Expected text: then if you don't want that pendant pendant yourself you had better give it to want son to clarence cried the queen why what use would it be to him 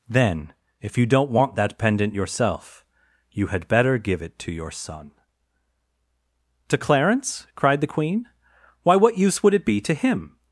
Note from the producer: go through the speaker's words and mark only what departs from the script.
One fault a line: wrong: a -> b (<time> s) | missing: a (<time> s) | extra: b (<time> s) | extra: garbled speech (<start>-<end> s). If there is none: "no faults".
missing: pendant (2.1 s)
wrong: want -> your (4.5 s)